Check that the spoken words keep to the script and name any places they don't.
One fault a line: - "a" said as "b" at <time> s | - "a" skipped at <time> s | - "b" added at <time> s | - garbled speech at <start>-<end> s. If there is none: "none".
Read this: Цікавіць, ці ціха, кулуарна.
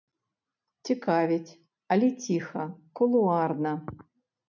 - "ці" said as "але" at 1.9 s